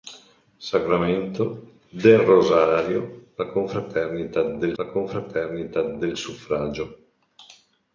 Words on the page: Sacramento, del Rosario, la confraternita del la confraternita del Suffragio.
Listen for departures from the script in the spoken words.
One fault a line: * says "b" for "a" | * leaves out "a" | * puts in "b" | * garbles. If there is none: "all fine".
all fine